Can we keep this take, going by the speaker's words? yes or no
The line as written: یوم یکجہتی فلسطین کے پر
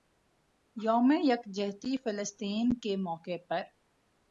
no